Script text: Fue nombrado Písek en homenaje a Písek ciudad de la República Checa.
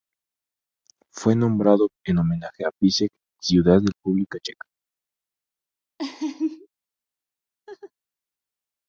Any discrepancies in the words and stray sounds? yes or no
yes